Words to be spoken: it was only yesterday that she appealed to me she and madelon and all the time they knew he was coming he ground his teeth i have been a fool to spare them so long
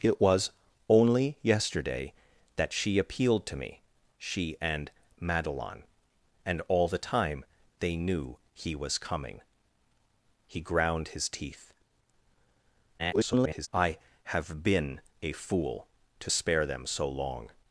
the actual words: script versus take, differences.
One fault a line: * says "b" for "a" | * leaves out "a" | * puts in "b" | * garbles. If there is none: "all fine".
* garbles